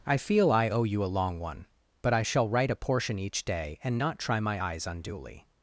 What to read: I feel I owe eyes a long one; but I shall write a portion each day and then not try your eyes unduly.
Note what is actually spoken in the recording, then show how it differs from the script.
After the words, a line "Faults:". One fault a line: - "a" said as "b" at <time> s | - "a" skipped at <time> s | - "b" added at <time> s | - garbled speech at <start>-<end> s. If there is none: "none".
I feel I owe you a long one; but I shall write a portion each day and not try my eyes unduly.
Faults:
- "eyes" said as "you" at 0.8 s
- "then" skipped at 4.0 s
- "your" said as "my" at 4.4 s